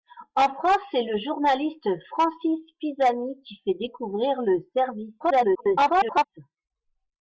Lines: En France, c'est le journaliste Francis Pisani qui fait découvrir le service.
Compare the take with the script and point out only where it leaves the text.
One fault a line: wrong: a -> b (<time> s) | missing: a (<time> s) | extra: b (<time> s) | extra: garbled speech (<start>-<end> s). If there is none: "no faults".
extra: garbled speech (5.2-6.2 s)